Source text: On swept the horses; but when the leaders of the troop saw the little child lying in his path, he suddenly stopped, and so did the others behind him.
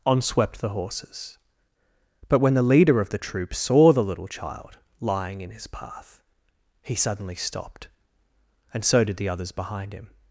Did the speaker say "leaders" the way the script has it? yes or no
no